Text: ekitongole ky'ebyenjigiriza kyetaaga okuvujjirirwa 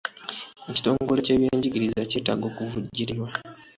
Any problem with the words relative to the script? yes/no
no